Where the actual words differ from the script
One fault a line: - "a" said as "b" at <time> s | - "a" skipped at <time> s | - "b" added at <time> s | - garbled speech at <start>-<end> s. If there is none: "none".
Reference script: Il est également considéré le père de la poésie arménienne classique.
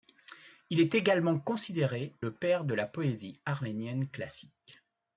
none